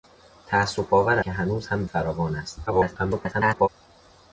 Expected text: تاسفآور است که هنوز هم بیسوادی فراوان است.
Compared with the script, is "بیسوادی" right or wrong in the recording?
wrong